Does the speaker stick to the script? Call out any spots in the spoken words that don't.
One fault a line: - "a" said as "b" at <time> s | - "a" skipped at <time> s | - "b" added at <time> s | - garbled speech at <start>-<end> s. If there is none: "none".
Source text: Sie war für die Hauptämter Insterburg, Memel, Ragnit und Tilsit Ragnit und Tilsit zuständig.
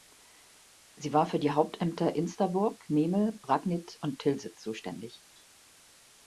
- "Ragnit und Tilsit" skipped at 4.6 s